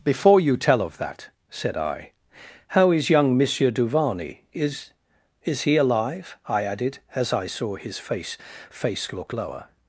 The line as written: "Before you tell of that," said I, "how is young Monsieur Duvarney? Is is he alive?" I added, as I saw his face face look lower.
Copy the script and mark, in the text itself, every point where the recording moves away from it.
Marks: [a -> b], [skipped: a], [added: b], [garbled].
"Before you tell of that," said I, "how is young Monsieur Duvarney? Is is he alive?" I added, as I saw his face face look lower.